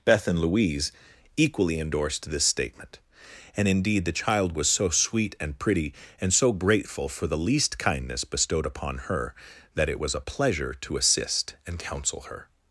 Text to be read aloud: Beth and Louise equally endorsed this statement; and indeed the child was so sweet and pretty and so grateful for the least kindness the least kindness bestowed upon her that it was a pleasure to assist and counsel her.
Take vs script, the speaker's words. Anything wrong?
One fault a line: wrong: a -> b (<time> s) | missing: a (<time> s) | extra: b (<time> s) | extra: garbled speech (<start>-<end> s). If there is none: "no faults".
missing: the least kindness (8.2 s)